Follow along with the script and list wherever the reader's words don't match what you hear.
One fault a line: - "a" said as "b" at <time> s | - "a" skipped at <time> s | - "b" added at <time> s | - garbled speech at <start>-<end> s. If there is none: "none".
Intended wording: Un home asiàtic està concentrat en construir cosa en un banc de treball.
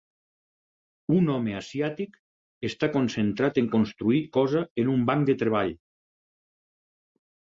none